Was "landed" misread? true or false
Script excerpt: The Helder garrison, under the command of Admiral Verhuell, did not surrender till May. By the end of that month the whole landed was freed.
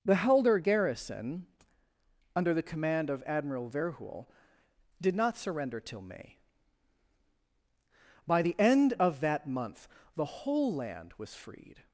true